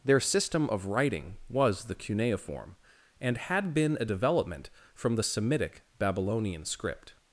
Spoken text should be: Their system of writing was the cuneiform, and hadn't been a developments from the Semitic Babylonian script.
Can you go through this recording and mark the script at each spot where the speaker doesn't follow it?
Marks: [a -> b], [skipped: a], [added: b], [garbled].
Their system of writing was the cuneiform, and [hadn't -> had] been a [developments -> development] from the Semitic Babylonian script.